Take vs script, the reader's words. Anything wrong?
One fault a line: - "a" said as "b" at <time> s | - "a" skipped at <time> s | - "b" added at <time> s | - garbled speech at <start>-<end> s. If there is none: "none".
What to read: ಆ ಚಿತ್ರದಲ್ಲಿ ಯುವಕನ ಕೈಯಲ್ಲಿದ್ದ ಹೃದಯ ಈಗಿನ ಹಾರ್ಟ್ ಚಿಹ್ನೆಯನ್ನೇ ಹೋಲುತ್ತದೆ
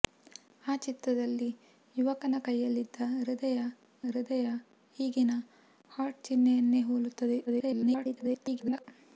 - "ಹೃದಯ" added at 4.1 s
- garbled speech at 7.5-8.8 s